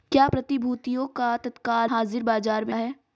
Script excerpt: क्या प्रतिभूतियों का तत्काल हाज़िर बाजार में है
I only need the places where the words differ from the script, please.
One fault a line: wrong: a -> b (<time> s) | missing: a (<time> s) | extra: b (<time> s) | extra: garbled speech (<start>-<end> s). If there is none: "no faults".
no faults